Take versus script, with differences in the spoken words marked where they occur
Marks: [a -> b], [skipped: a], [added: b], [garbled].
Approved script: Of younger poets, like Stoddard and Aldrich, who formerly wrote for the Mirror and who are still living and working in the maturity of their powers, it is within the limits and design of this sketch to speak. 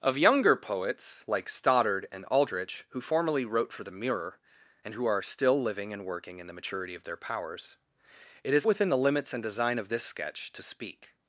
Of younger poets, like Stoddard and Aldrich, who formerly wrote for the Mirror and who are still living and working in the maturity of their powers, it is within the limits and design of this sketch to speak.